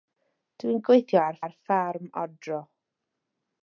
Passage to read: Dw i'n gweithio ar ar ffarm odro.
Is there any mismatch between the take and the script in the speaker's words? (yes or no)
no